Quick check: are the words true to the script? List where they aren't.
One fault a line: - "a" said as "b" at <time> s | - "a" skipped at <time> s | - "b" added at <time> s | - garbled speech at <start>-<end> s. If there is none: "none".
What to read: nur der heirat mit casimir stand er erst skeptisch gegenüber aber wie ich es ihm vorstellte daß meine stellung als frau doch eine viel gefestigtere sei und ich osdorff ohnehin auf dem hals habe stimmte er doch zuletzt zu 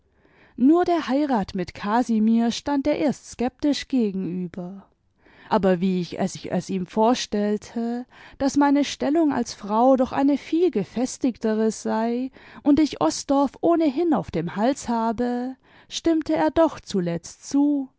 - "ich es" added at 6.3 s